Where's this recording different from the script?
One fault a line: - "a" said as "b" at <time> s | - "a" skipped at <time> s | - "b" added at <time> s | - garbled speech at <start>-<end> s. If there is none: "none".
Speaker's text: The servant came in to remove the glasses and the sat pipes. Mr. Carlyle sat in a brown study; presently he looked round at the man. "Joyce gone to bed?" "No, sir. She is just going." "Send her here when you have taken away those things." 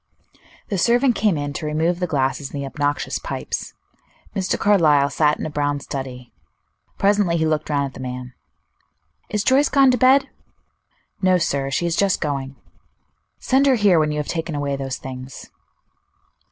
- "sat" said as "obnoxious" at 2.6 s
- "Is" added at 9.3 s